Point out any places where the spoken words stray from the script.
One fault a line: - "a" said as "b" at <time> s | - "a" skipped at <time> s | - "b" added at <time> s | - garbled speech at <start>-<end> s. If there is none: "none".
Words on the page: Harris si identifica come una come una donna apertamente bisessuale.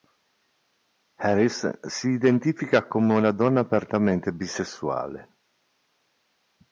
- "come una" skipped at 3.3 s